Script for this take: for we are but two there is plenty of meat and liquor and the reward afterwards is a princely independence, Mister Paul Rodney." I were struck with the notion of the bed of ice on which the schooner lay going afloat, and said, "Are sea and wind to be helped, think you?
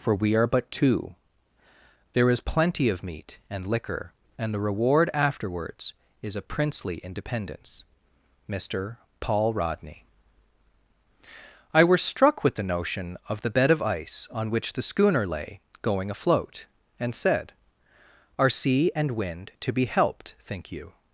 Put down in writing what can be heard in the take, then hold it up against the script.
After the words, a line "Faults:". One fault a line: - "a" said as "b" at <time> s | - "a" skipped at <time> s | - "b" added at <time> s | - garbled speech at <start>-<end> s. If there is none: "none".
for we are but two there is plenty of meat and liquor and the reward afterwards is a princely independence, Mister Paul Rodney." I were struck with the notion of the bed of ice on which the schooner lay going afloat, and said, "Are sea and wind to be helped, think you?
Faults:
none